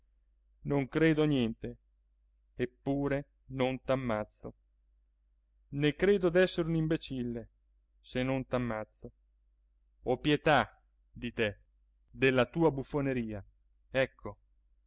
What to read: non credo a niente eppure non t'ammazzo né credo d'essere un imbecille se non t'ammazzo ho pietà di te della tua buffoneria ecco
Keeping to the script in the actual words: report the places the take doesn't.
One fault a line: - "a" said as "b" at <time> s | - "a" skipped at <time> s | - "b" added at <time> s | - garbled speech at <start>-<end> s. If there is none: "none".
none